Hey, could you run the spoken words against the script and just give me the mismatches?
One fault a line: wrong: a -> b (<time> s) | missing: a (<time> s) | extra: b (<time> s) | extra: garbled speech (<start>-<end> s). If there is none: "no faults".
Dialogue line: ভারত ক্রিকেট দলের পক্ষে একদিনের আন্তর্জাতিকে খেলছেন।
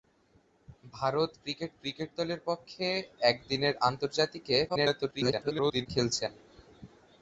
extra: ক্রিকেট (1.8 s)
extra: garbled speech (4.7-5.9 s)